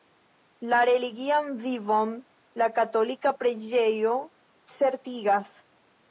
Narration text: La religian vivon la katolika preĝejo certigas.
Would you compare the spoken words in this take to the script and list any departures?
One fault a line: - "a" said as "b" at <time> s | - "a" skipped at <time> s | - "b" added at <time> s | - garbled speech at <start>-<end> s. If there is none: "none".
none